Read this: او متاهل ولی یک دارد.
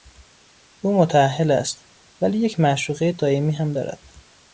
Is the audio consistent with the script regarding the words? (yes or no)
no